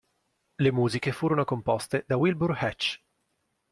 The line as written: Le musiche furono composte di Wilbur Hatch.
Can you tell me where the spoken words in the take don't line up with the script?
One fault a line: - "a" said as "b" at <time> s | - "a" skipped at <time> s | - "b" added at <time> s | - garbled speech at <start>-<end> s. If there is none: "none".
- "di" said as "da" at 2.1 s